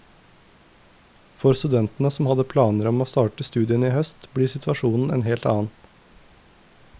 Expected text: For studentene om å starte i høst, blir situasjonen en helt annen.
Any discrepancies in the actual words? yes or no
yes